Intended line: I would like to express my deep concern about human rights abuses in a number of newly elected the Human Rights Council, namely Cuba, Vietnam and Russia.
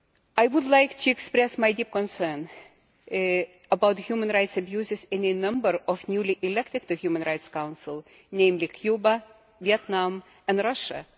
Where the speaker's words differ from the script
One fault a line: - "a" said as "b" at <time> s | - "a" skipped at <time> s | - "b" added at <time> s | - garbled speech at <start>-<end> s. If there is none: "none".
none